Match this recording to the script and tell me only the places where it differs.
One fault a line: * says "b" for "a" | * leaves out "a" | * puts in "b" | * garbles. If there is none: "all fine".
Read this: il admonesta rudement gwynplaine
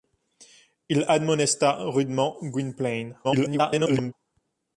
* garbles